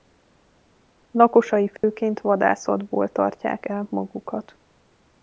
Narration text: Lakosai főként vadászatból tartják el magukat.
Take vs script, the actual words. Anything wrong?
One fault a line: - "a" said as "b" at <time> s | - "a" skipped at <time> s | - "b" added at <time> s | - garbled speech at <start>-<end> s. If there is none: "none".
none